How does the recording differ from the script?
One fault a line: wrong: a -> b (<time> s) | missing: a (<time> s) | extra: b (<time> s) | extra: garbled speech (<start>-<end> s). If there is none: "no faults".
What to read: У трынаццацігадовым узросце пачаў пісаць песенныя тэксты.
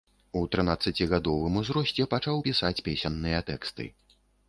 no faults